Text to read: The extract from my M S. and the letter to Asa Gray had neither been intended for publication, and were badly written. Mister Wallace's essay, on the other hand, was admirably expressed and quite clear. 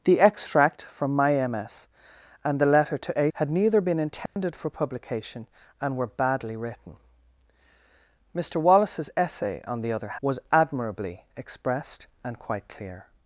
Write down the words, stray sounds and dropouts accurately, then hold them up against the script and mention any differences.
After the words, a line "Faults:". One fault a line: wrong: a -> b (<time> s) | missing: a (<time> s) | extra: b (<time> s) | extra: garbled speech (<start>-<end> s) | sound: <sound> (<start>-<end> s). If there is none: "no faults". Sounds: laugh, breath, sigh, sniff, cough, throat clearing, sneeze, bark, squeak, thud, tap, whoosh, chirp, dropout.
The extract from my M S. and the letter to Had neither been intended for publication, and were badly written. Mister Wallace's essay, on the other was admirably expressed and quite clear.
Faults:
missing: Asa Gray (3.3 s)
sound: dropout (4.3-4.4 s)
missing: hand (10.2 s)